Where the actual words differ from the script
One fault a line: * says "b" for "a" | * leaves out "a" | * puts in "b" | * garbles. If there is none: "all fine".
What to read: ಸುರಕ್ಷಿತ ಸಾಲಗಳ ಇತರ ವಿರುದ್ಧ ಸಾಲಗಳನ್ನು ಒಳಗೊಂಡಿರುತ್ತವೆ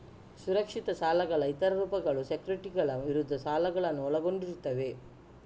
* puts in "ರೂಪಗಳು ಸೆಕ್ಯುರಿಟಿಗಳ"